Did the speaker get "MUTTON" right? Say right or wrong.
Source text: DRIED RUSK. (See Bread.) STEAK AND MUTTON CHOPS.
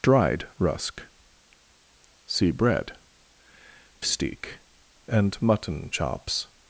right